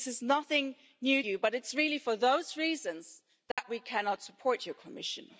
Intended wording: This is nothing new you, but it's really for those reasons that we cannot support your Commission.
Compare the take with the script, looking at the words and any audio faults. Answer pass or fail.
fail